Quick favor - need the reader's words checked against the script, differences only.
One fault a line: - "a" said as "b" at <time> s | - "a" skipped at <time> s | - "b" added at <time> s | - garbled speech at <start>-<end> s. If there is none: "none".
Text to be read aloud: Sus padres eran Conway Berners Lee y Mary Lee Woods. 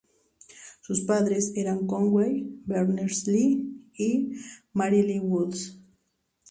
none